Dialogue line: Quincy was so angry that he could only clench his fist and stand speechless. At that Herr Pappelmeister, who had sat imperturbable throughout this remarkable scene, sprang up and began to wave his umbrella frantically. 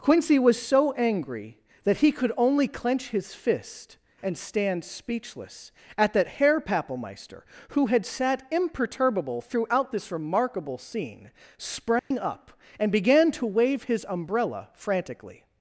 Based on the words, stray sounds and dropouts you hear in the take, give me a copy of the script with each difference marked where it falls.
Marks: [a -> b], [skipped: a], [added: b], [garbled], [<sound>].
Quincy was so angry that he could only clench his fist and stand speechless. At that Herr Pappelmeister, who had sat imperturbable throughout this remarkable scene, sprang [dropout] up and began to wave his umbrella frantically.